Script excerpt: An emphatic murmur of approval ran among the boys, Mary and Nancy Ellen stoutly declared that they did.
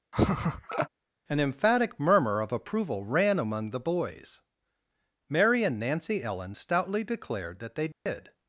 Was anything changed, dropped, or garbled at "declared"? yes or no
no